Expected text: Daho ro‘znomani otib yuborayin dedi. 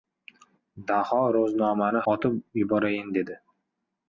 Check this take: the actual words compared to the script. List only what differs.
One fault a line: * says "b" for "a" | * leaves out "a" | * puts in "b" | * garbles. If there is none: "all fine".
all fine